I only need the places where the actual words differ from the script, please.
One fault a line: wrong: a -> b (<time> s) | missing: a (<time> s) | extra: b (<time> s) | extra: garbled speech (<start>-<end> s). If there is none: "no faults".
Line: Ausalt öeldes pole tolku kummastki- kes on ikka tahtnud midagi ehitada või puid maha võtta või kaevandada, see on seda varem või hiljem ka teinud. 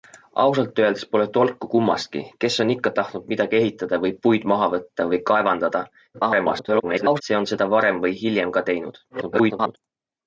extra: garbled speech (6.1-7.2 s)
extra: garbled speech (9.1-9.8 s)